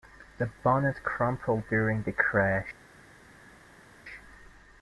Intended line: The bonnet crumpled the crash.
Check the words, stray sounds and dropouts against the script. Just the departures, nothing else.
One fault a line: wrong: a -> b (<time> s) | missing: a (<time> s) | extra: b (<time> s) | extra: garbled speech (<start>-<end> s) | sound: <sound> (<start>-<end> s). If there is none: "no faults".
extra: during (1.7 s)